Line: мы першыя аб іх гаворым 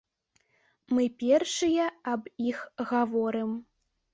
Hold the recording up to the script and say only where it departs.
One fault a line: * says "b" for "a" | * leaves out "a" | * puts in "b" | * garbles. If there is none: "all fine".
all fine